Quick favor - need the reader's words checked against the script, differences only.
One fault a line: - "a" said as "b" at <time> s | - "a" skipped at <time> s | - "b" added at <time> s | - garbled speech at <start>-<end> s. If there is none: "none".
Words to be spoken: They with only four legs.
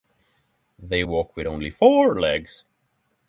- "walk" added at 1.0 s